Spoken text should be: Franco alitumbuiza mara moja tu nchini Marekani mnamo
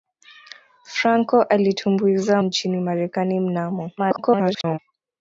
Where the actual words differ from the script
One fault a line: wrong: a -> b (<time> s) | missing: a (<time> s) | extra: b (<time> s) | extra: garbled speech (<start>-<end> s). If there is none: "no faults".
missing: mara moja tu (2.4 s)
extra: garbled speech (4.0-4.8 s)